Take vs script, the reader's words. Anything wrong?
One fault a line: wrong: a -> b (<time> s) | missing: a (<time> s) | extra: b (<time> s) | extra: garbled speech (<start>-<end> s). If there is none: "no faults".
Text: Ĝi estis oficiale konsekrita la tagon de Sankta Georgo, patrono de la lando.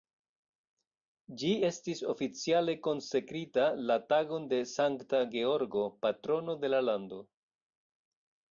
no faults